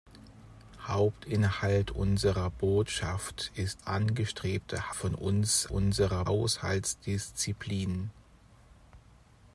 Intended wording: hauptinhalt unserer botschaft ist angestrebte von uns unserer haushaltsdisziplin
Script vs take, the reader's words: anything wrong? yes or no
no